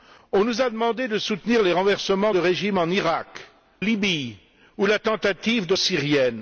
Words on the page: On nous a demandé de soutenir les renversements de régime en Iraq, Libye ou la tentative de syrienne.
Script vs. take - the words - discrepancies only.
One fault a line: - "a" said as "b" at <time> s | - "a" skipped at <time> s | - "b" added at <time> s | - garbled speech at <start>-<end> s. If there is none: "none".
none